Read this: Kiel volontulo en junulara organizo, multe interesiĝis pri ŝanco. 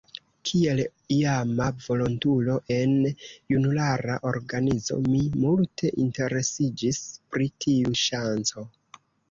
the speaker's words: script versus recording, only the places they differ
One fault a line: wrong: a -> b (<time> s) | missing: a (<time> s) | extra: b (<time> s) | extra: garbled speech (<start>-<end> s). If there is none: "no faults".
extra: iama (1.1 s)
extra: mi (5.1 s)
extra: tiu (7.7 s)